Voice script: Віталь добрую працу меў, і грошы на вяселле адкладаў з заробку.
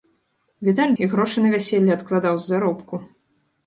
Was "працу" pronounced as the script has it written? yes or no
no